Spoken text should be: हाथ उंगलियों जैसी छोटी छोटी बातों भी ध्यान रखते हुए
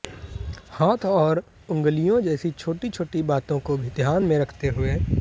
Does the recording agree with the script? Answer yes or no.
no